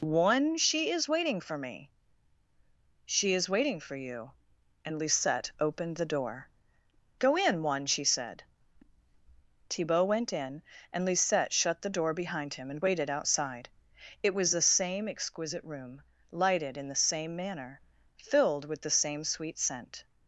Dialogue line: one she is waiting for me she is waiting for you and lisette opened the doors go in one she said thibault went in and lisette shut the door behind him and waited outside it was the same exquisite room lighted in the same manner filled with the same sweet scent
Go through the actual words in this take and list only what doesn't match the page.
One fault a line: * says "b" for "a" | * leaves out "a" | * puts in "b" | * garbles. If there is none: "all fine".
* says "door" for "doors"